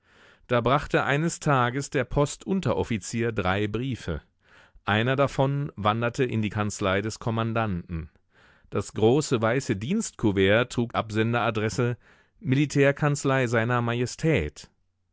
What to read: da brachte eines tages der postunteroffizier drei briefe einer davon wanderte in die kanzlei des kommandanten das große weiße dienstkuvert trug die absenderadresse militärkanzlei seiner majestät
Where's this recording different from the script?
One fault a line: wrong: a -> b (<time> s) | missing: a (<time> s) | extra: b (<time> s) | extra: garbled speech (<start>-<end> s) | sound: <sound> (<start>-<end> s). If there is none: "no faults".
missing: die (10.9 s)